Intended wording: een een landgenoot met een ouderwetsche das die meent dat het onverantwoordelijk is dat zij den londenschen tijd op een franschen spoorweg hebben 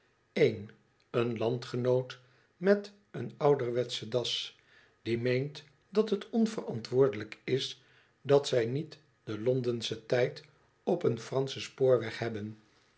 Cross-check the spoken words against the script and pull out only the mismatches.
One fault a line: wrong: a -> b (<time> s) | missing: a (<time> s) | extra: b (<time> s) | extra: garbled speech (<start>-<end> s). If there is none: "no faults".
extra: niet (8.7 s)